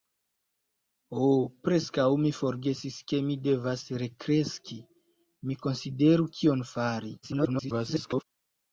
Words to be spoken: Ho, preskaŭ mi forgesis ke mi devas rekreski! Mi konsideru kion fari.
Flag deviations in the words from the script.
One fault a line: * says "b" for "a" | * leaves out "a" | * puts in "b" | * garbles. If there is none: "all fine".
* garbles